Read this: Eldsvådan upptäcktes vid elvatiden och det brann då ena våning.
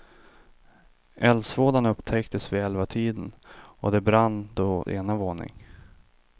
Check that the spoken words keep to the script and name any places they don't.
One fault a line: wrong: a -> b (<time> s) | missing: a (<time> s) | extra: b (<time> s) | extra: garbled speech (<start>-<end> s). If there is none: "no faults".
no faults